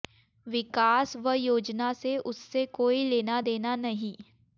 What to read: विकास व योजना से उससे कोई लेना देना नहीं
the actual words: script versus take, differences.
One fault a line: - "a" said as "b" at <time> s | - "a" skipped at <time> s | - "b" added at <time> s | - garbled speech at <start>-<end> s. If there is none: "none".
none